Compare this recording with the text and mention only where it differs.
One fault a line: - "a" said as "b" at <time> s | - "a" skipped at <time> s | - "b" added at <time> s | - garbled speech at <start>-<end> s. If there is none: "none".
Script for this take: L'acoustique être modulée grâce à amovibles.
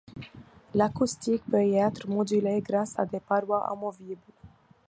- "peut y" added at 1.4 s
- "des parois" added at 3.0 s